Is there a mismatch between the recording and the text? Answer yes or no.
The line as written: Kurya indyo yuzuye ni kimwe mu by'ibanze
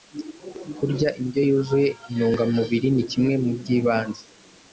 yes